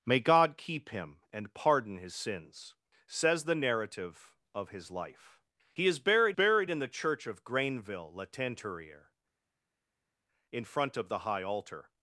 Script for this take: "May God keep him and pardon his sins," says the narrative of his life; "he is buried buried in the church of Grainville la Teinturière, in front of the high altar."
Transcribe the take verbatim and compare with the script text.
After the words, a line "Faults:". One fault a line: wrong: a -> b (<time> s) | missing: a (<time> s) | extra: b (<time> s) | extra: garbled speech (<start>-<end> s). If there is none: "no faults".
"May God keep him and pardon his sins," says the narrative of his life; "he is buried buried in the church of Grainville la Teinturière, in front of the high altar."
Faults:
no faults